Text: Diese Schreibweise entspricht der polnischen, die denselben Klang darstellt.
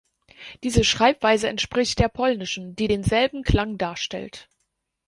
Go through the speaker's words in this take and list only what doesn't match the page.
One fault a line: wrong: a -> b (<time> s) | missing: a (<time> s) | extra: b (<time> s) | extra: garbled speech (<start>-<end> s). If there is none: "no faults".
no faults